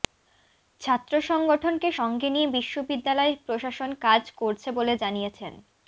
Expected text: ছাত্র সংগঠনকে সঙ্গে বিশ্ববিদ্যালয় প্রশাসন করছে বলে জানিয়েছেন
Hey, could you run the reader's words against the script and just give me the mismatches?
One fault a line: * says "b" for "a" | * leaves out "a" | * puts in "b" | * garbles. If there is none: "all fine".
* puts in "নিয়ে"
* puts in "কাজ"